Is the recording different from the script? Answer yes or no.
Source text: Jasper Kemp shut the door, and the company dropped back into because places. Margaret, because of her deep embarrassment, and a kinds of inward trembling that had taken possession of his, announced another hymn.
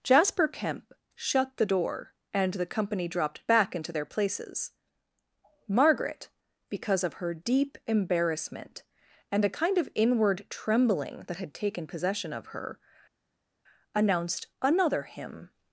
yes